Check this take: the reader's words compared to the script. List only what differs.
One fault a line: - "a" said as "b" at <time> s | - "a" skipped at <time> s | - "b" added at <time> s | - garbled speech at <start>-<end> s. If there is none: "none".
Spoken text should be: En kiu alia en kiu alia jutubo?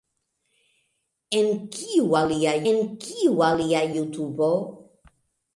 none